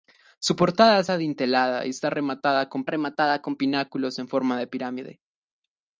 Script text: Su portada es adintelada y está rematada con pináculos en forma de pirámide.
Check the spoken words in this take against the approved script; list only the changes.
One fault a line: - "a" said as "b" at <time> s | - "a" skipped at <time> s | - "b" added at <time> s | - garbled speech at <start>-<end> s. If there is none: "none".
- "rematada con" added at 2.9 s